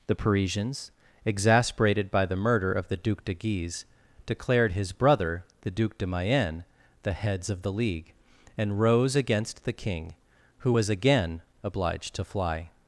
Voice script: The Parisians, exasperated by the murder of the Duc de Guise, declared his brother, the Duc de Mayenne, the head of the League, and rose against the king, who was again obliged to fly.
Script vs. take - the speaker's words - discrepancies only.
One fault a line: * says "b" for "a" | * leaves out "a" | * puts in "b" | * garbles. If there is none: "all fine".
* says "heads" for "head"